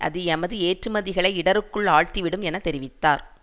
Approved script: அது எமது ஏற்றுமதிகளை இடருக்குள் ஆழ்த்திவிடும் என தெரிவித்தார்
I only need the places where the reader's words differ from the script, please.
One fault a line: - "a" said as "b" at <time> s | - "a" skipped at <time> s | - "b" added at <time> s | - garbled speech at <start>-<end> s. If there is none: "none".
none